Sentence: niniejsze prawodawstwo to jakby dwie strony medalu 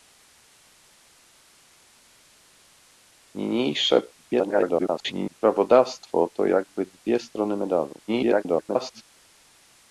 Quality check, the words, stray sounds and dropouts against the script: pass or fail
fail